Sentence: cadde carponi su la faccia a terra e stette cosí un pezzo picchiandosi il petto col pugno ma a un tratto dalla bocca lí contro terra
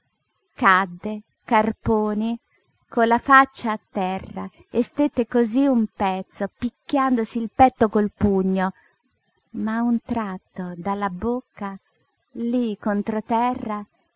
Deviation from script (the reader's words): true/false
true